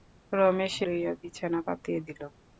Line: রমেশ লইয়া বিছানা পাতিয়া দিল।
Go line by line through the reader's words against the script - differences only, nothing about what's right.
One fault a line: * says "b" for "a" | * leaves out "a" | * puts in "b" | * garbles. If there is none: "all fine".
all fine